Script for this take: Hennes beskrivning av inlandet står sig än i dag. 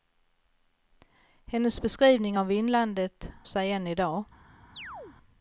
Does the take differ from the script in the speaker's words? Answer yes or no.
yes